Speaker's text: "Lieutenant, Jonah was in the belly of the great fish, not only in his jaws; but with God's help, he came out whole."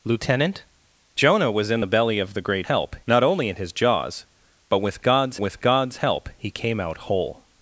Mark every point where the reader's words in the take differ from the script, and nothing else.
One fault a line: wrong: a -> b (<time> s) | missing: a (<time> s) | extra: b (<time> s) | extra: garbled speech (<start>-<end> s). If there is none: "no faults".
wrong: fish -> help (2.6 s)
extra: with God's (5.4 s)